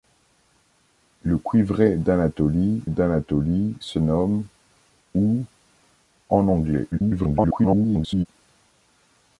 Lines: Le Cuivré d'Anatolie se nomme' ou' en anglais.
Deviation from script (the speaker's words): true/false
true